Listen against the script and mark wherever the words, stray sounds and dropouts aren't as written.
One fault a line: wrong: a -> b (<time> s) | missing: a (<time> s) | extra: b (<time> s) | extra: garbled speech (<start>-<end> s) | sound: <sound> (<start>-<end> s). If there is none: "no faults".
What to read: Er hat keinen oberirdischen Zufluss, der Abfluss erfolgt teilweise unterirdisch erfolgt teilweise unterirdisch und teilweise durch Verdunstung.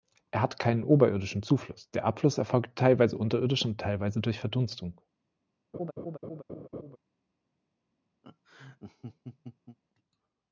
missing: erfolgt teilweise unterirdisch (3.7 s)
sound: laugh (5.7-7.0 s)
sound: laugh (8.2-9.8 s)